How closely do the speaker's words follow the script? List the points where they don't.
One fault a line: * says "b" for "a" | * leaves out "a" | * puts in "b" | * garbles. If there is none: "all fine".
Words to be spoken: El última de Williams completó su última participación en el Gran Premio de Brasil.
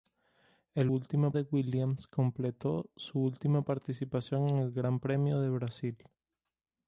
all fine